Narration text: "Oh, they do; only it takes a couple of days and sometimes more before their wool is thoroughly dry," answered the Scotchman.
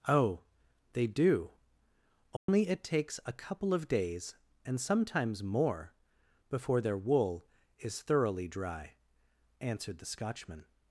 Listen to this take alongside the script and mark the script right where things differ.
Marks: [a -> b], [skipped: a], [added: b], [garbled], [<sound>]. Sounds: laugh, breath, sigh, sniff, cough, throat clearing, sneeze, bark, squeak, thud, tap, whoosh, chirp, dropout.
"Oh, they do; only [dropout] it takes a couple of days and sometimes more before their wool is thoroughly dry," answered the Scotchman.